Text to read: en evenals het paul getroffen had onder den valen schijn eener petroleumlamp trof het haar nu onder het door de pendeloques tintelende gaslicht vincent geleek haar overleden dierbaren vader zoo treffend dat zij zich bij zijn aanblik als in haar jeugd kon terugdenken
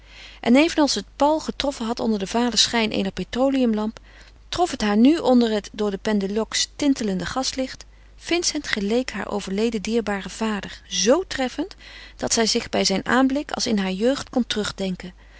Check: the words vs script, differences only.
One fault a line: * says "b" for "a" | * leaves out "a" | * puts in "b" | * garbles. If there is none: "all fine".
all fine